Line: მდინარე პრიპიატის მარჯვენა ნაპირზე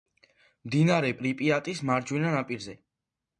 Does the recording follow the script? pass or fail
pass